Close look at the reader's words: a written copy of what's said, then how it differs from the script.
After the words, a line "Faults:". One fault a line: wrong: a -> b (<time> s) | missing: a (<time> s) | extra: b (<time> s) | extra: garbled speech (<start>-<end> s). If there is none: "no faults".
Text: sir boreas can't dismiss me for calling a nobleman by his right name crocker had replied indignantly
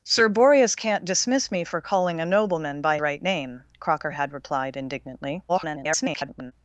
sir boreas can't dismiss me for calling a nobleman by right name crocker had replied indignantly [garbled]
Faults:
missing: his (3.0 s)
extra: garbled speech (5.5-6.5 s)